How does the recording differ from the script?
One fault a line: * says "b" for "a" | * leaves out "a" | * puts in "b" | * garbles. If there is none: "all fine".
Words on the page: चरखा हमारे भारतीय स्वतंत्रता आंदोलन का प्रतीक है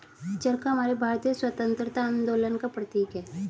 all fine